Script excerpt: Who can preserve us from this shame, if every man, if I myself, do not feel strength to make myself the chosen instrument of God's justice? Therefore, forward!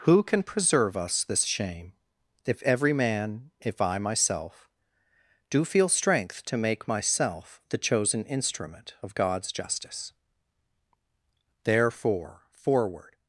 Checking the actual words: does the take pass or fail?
fail